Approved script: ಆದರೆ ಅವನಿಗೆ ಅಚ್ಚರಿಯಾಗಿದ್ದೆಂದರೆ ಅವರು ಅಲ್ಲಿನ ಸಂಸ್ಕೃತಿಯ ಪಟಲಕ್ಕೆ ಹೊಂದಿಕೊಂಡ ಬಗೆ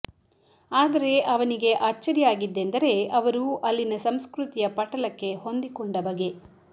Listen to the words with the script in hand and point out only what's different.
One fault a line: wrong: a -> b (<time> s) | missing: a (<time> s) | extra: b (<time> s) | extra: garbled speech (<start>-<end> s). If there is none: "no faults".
no faults